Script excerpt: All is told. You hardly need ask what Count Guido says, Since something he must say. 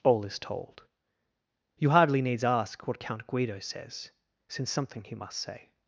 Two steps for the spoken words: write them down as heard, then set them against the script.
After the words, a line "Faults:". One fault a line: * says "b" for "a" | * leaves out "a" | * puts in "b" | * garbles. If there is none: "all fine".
All is told. You hardly needs ask what Count Guido says, Since something he must say.
Faults:
* says "needs" for "need"